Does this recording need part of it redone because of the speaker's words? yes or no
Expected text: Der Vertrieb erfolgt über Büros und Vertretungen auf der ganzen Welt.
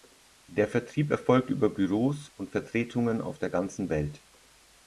no